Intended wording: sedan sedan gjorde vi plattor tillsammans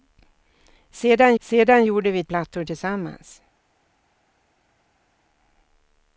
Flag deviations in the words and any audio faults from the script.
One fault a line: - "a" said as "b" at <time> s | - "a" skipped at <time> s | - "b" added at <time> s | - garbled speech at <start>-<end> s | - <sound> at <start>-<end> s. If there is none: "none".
none